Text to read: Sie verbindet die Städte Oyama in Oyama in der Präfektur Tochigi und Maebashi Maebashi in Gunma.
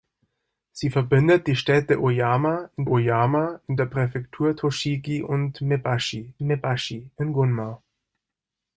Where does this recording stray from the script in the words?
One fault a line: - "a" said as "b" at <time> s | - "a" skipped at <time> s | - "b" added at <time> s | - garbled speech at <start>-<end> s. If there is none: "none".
none